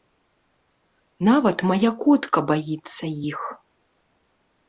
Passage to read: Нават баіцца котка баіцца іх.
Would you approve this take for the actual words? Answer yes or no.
no